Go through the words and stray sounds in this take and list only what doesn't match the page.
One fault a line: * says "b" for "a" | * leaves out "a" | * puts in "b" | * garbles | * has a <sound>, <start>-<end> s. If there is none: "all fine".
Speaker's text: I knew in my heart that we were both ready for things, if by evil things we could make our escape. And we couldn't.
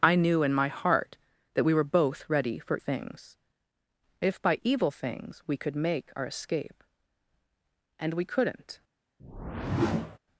* has a whoosh, 9.2-10.2 s